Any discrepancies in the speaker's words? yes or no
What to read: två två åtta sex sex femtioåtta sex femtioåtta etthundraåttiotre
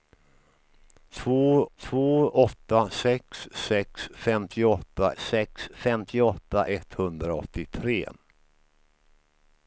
no